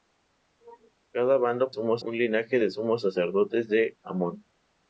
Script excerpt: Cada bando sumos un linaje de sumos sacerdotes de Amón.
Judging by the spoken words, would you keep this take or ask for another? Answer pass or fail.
pass